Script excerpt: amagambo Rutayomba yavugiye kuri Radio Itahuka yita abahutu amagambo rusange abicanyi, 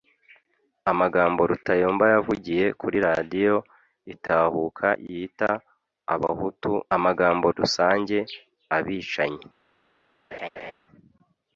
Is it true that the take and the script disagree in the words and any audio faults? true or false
true